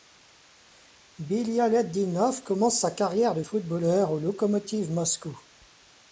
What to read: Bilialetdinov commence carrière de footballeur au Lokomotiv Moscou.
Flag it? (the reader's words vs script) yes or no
yes